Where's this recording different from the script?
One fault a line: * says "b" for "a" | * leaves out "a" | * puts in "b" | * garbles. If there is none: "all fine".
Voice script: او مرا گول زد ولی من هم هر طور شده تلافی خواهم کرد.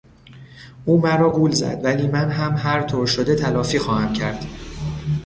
all fine